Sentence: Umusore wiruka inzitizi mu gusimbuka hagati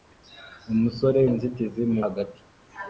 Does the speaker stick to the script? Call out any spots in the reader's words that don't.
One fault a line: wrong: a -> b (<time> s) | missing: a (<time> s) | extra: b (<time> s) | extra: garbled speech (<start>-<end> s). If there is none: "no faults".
missing: wiruka (1.2 s)
missing: gusimbuka (2.0 s)